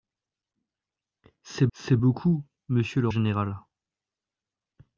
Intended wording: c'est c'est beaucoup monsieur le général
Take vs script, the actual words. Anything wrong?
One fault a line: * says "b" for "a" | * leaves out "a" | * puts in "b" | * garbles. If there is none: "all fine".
all fine